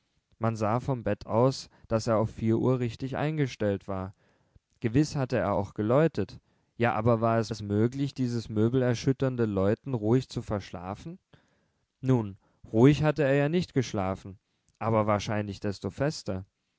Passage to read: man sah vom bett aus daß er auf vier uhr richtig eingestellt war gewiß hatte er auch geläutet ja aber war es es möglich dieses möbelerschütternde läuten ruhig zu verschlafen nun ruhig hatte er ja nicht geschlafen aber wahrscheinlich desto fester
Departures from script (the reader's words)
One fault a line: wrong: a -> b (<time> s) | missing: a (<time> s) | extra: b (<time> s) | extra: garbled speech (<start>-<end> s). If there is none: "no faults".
no faults